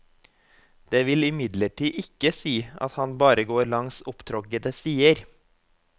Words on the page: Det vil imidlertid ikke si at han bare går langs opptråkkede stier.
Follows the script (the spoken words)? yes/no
yes